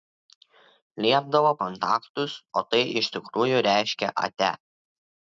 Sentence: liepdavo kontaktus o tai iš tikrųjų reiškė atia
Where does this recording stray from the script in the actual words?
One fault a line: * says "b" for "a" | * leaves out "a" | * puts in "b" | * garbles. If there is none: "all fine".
all fine